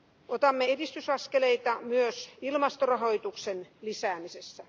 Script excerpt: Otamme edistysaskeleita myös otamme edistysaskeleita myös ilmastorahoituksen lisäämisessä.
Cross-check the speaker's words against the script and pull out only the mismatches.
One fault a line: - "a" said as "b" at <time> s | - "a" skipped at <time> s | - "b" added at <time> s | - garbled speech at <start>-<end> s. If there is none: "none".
- "otamme edistysaskeleita myös" skipped at 2.3 s